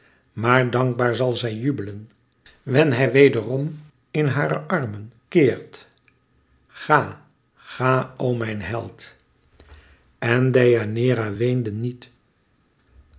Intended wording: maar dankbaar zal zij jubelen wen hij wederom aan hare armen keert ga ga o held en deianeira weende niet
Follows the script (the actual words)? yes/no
no